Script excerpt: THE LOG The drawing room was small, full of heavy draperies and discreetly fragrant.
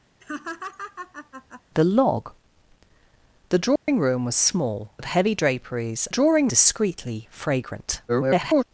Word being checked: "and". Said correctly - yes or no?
no